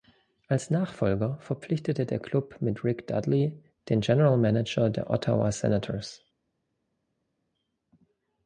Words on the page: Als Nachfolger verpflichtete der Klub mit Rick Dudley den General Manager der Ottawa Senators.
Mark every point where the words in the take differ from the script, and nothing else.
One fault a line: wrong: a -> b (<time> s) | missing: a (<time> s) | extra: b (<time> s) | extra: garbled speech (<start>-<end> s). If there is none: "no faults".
no faults